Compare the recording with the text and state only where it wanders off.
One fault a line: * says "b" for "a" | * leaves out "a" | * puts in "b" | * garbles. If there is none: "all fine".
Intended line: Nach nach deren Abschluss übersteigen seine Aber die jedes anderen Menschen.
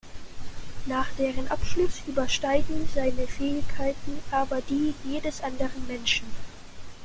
* leaves out "nach"
* puts in "Fähigkeiten"